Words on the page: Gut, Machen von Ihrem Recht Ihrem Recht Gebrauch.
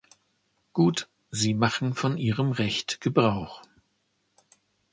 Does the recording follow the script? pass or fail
fail